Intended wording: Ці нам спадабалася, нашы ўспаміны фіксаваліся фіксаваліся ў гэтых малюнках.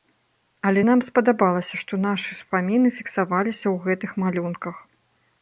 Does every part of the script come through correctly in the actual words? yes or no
no